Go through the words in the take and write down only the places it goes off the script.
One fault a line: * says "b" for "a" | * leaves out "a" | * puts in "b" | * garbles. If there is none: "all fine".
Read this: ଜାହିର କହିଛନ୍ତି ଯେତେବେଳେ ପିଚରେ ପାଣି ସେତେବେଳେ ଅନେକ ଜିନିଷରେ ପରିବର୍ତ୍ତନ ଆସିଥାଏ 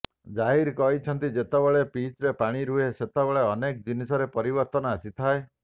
* puts in "ରୁହେ"